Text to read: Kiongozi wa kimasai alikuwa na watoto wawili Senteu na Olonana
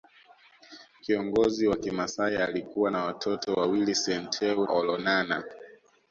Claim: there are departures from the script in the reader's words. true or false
true